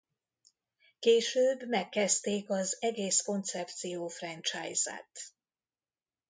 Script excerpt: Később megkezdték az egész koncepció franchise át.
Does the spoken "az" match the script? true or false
true